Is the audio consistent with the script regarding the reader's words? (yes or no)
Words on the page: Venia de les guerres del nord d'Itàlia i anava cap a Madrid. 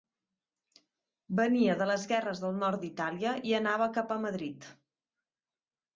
yes